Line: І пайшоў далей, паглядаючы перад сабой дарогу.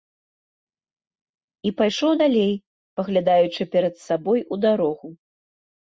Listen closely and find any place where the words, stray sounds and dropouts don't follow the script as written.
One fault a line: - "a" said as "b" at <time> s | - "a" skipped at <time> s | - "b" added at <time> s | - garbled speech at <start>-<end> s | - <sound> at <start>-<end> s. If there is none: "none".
- "у" added at 4.5 s